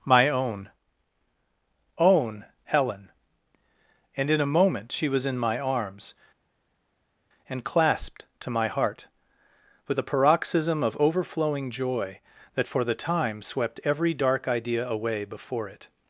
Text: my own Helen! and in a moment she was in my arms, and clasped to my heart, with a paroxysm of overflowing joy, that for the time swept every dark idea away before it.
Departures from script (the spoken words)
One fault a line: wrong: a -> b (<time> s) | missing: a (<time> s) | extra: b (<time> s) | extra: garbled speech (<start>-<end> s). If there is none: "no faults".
extra: own (2.0 s)